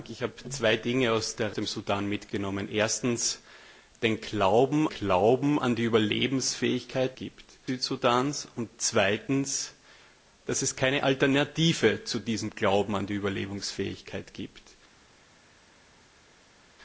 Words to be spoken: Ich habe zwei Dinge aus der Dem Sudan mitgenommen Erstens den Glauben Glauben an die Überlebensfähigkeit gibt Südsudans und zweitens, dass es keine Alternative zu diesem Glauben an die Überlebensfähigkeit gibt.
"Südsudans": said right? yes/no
yes